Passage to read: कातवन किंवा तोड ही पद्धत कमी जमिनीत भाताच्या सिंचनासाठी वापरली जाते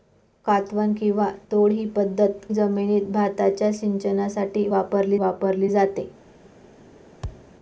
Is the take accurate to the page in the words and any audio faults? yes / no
no